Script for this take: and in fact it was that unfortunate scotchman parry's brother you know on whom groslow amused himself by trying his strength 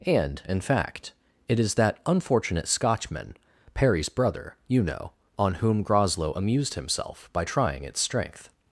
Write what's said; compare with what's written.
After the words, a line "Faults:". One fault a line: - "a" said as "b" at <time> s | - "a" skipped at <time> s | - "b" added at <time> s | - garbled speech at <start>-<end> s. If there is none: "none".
and in fact it is that unfortunate scotchman parry's brother you know on whom groslow amused himself by trying its strength
Faults:
- "was" said as "is" at 1.6 s
- "his" said as "its" at 7.8 s